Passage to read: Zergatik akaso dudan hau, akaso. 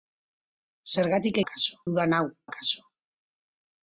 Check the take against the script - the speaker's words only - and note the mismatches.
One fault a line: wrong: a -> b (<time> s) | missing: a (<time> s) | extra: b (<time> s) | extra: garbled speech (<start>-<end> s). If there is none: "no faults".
no faults